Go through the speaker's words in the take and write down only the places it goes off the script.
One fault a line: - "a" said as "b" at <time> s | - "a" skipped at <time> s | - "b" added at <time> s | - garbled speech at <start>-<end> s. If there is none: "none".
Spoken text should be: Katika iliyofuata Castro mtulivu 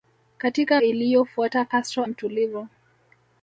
none